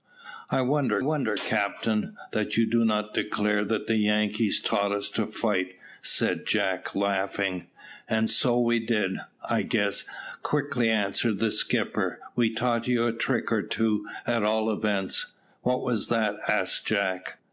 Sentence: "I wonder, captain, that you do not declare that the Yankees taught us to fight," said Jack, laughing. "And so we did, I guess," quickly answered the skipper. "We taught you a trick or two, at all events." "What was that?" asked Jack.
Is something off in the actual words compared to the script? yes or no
yes